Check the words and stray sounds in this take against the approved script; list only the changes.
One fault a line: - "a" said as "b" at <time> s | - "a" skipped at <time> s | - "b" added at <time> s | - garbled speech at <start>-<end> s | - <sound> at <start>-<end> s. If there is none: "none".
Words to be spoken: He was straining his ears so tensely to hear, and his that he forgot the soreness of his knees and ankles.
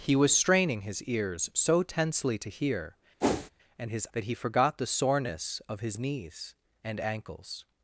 - whoosh at 3.2-3.5 s